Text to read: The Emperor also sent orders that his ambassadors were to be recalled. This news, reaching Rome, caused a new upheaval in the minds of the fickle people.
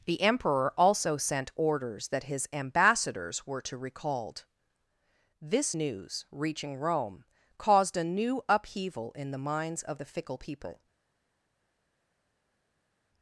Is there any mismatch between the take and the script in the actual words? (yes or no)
yes